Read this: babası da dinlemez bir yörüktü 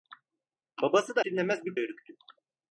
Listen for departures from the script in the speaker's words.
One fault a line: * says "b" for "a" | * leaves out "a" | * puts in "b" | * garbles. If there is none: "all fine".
all fine